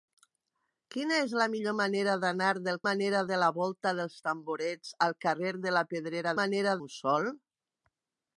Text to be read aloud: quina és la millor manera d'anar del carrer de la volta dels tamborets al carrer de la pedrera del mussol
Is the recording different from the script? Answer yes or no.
yes